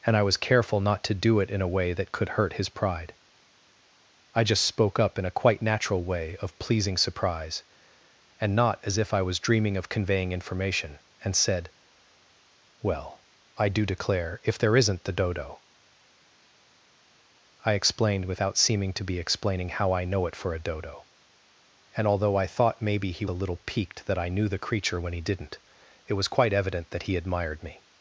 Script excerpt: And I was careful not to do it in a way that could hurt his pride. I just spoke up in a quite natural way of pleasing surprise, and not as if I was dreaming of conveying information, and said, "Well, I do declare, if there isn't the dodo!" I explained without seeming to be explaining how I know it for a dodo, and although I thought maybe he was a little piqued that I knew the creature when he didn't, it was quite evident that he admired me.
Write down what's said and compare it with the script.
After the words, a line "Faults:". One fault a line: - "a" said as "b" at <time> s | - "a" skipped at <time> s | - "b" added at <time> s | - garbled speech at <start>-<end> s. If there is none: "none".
And I was careful not to do it in a way that could hurt his pride. I just spoke up in a quite natural way of pleasing surprise, and not as if I was dreaming of conveying information, and said, "Well, I do declare, if there isn't the dodo!" I explained without seeming to be explaining how I know it for a dodo, and although I thought maybe he a little piqued that I knew the creature when he didn't, it was quite evident that he admired me.
Faults:
- "was" skipped at 23.3 s